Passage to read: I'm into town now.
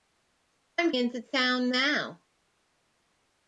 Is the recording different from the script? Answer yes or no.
no